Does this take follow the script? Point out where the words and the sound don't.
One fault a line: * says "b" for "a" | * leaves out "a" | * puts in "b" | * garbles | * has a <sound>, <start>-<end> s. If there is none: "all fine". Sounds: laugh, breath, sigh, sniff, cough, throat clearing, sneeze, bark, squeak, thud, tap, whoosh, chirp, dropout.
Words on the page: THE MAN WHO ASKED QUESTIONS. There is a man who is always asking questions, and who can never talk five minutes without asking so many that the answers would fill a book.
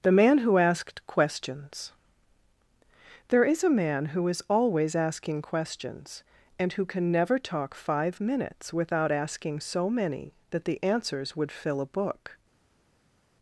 all fine